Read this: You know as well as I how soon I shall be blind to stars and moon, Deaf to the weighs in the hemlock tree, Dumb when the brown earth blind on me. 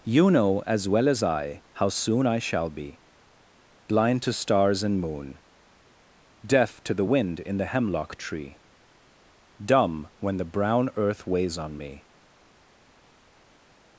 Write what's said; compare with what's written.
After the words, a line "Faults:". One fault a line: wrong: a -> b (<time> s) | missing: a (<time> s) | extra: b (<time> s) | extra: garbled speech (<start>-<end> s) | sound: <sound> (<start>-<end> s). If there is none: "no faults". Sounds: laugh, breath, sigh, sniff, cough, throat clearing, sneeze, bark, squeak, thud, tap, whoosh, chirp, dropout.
You know as well as I how soon I shall be blind to stars and moon, Deaf to the wind in the hemlock tree, Dumb when the brown earth weighs on me.
Faults:
wrong: weighs -> wind (7.0 s)
wrong: blind -> weighs (11.3 s)